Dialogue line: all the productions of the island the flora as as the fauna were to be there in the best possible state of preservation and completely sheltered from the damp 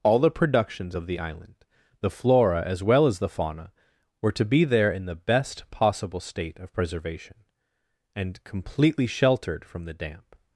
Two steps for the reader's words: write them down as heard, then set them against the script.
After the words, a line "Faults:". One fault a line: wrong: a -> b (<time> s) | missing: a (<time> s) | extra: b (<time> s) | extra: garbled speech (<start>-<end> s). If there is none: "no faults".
all the productions of the island the flora as well as the fauna were to be there in the best possible state of preservation and completely sheltered from the damp
Faults:
extra: well (2.8 s)